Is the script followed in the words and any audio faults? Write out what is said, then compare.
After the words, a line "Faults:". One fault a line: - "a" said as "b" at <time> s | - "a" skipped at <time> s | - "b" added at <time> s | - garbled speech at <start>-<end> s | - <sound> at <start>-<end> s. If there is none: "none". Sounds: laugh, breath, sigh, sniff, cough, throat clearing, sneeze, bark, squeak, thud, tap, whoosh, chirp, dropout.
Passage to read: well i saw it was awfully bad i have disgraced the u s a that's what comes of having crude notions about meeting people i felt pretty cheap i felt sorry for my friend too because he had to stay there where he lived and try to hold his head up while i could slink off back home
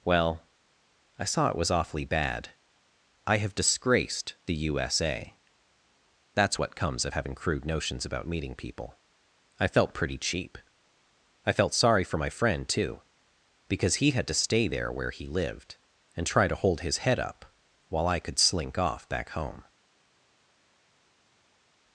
well i saw it was awfully bad i have disgraced the u s a that's what comes of having crude notions about meeting people i felt pretty cheap i felt sorry for my friend too because he had to stay there where he lived and try to hold his head up while i could slink off back home
Faults:
none